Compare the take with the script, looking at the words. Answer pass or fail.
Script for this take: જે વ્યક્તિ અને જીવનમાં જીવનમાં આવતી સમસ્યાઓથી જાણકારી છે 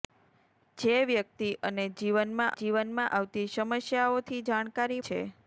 pass